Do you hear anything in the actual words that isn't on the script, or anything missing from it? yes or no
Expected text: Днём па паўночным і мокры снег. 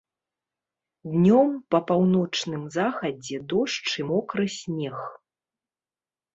yes